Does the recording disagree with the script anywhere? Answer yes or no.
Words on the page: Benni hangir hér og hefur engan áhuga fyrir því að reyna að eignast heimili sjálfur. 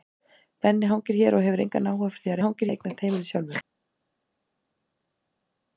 yes